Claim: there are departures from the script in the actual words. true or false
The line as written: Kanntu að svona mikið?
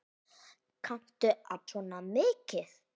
false